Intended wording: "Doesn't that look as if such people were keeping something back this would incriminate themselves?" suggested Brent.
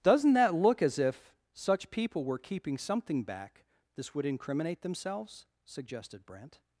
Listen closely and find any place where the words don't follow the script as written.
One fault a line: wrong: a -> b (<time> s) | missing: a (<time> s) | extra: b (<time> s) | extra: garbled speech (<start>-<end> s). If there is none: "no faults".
no faults